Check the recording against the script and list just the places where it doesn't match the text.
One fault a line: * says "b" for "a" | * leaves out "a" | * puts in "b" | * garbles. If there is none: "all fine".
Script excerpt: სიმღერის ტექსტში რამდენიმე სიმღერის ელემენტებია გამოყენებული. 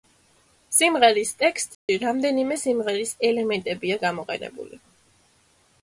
all fine